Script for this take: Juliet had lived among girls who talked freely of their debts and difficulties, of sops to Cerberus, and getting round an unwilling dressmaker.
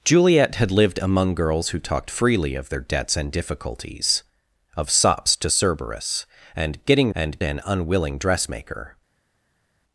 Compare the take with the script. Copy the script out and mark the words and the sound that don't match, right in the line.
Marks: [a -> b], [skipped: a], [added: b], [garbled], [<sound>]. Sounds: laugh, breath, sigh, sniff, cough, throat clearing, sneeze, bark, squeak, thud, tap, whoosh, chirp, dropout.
Juliet had lived among girls who talked freely of their debts and difficulties, of sops to Cerberus, and getting [round -> and] an unwilling dressmaker.